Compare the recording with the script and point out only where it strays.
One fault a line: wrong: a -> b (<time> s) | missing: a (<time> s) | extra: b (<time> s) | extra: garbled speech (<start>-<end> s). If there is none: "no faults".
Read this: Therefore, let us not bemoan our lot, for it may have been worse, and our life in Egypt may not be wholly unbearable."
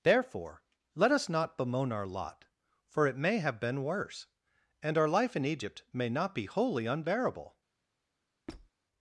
no faults